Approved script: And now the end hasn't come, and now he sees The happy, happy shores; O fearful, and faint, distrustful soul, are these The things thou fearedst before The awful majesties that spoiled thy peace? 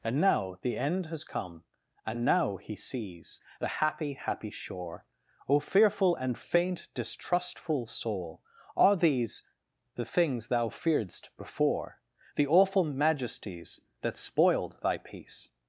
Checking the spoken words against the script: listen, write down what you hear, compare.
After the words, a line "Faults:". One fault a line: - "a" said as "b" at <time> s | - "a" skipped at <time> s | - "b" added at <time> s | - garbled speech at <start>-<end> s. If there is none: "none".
And now the end has come, and now he sees The happy, happy shore; O fearful, and faint, distrustful soul, are these The things thou fearedst before The awful majesties that spoiled thy peace?
Faults:
- "hasn't" said as "has" at 1.1 s
- "shores" said as "shore" at 4.5 s